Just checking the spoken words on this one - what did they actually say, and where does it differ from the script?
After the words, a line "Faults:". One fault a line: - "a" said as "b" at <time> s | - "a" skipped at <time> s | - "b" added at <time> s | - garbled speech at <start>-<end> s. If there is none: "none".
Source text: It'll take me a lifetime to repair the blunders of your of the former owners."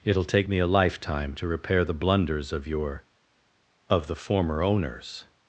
It'll take me a lifetime to repair the blunders of your of the former owners."
Faults:
none